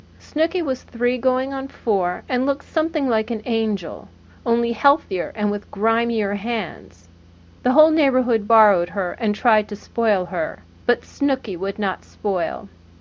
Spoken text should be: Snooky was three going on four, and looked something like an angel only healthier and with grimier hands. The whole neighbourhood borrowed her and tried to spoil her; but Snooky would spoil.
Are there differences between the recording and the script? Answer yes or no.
yes